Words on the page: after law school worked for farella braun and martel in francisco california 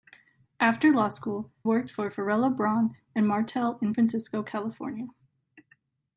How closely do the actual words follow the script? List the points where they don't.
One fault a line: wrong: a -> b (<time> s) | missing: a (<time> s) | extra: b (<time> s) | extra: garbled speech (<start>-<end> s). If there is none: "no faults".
no faults